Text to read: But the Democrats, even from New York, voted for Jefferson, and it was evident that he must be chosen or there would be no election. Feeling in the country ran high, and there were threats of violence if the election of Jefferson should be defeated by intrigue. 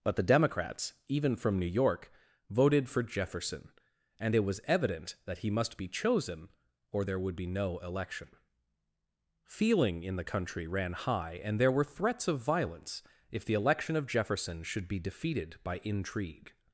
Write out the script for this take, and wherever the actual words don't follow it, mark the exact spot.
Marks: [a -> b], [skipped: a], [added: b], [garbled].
But the Democrats, even from New York, voted for Jefferson, and it was evident that he must be chosen or there would be no election. Feeling in the country ran high, and there were threats of violence if the election of Jefferson should be defeated by intrigue.